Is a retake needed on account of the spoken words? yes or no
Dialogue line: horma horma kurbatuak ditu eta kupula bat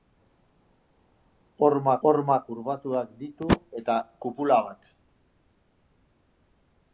no